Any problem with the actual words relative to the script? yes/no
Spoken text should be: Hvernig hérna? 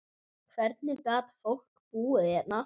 yes